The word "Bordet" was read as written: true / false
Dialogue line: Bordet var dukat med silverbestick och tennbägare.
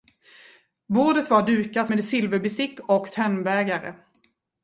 true